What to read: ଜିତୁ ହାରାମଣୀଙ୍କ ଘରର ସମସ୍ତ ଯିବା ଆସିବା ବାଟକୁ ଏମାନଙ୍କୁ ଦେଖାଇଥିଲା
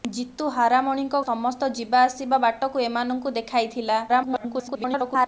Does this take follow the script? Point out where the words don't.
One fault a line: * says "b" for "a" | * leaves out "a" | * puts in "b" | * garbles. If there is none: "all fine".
* leaves out "ଘରର"
* garbles